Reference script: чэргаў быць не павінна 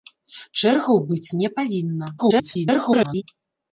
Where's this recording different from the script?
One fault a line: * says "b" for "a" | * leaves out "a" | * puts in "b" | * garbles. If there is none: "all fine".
* garbles